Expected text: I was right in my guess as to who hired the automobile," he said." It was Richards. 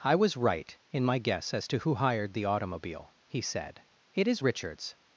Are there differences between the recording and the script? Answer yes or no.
yes